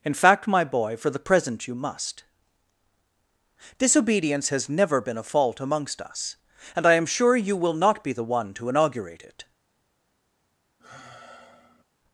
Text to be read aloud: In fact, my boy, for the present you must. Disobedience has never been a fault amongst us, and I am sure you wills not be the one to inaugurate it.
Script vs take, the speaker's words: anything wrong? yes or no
yes